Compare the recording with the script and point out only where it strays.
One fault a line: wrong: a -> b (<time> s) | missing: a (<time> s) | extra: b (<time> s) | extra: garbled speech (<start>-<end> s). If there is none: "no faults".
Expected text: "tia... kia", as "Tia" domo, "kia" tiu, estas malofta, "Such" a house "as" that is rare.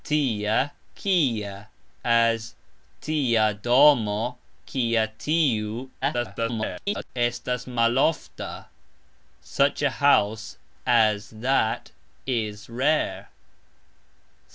extra: garbled speech (6.0-7.1 s)